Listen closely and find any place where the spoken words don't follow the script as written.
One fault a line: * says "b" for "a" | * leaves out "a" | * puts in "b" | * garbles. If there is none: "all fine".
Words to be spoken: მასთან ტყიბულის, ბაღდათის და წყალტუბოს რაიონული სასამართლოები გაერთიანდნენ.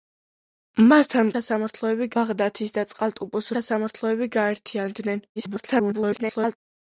* says "სასამართლოები" for "ტყიბულის"
* leaves out "რაიონული"
* garbles